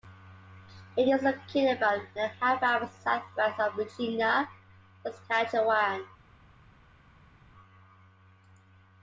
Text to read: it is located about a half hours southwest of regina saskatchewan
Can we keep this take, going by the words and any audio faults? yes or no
yes